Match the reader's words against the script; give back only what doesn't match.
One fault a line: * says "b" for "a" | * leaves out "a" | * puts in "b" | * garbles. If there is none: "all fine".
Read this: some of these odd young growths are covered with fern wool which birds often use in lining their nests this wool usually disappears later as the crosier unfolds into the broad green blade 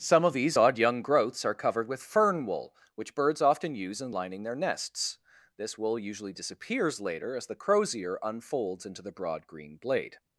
all fine